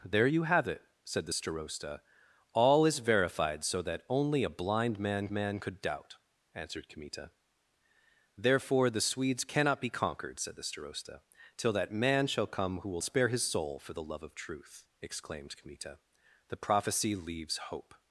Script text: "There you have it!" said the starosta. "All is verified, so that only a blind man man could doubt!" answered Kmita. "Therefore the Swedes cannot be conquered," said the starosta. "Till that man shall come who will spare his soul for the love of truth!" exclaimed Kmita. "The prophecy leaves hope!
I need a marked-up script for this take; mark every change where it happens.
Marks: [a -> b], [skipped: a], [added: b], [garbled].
"There you have it!" said the starosta. "All is verified, so that only a blind man man could doubt!" answered Kmita. "Therefore the Swedes cannot be conquered," said the starosta. "Till that man shall come who will spare his soul for the love of truth!" exclaimed Kmita. "The prophecy leaves hope!